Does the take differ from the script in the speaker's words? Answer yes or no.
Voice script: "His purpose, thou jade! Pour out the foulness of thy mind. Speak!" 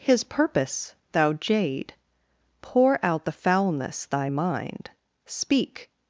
yes